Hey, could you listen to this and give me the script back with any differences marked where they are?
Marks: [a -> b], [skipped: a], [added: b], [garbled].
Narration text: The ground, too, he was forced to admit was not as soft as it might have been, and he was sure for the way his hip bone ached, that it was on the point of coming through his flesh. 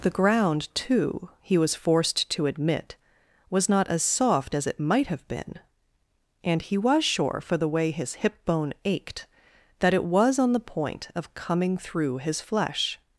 The ground, too, he was forced to admit was not as soft as it might have been, and he was sure for the way his hip bone ached, that it was on the point of coming through his flesh.